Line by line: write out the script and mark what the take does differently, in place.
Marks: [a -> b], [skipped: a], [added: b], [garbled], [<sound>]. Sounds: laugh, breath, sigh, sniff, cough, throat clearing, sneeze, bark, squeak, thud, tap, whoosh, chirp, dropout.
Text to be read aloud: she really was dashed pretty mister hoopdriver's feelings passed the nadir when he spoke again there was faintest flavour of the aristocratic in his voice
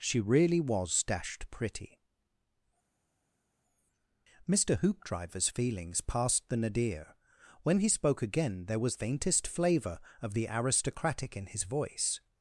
she really was dashed pretty mister hoopdriver's feelings passed the nadir when he spoke again there was faintest flavour of the aristocratic in his voice